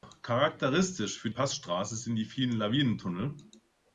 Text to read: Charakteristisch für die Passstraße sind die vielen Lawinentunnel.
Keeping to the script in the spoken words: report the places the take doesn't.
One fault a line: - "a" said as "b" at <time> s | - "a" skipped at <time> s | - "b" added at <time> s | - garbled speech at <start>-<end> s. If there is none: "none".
- "die" skipped at 1.3 s